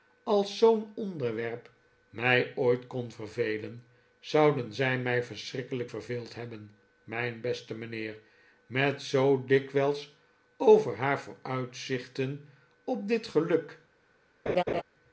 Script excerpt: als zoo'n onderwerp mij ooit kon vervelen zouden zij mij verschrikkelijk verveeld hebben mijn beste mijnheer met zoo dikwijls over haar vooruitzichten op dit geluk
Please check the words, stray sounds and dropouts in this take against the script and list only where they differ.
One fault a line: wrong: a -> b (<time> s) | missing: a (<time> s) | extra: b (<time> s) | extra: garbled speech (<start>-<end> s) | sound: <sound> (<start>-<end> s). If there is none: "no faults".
sound: laugh (14.5-14.8 s)